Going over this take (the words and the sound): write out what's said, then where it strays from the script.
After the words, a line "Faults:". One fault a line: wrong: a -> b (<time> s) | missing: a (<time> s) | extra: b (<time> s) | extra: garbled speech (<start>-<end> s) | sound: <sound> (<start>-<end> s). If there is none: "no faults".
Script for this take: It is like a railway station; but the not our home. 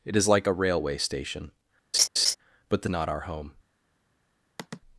It is like a railway station; but the not our home.
Faults:
sound: laugh (1.9-2.4 s)
sound: sigh (4.6-4.8 s)